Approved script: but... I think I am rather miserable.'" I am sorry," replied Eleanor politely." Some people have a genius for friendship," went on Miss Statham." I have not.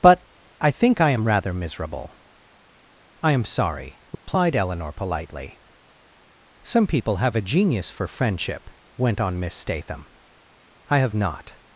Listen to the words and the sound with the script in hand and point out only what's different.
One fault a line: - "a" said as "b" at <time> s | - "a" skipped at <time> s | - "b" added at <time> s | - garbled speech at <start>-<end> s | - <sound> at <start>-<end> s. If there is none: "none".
- dropout at 4.1-4.3 s